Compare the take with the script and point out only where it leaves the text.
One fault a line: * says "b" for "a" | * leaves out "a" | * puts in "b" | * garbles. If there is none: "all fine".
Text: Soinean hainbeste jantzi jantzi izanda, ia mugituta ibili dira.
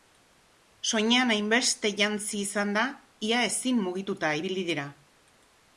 * leaves out "jantzi"
* puts in "ezin"